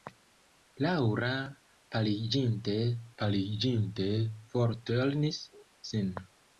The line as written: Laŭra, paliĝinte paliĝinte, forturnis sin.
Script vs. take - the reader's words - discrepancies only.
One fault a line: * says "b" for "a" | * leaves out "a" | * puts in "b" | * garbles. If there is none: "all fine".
all fine